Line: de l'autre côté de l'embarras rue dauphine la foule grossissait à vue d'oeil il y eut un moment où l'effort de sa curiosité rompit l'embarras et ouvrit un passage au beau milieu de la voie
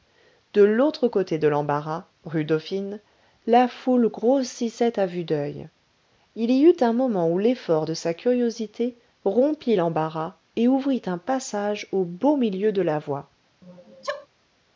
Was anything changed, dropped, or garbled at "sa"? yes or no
no